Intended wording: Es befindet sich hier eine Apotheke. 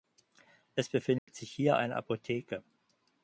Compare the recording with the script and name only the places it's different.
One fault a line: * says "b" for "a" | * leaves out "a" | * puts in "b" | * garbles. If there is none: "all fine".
all fine